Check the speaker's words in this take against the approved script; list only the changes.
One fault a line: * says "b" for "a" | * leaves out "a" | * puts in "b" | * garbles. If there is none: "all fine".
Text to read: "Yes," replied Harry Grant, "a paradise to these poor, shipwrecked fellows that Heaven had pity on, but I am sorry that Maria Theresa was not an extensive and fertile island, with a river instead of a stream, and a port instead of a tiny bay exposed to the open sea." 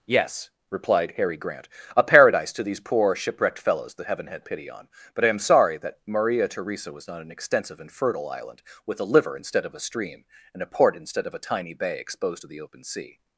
* says "liver" for "river"